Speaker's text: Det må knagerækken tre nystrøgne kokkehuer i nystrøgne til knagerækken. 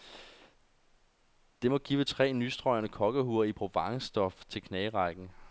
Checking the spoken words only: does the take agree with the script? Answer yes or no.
no